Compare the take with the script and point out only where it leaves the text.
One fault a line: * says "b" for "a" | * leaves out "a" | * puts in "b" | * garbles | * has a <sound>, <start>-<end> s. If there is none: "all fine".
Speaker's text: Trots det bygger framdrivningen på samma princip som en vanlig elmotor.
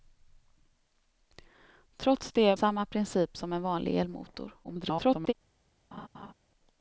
* leaves out "bygger framdrivningen på"
* garbles
* has a laugh, 5.9-6.3 s